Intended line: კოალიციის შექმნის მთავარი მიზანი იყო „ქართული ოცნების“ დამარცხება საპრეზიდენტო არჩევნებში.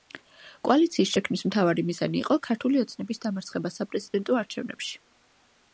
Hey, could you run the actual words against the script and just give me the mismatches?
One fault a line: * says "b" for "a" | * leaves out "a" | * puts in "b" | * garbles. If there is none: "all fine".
all fine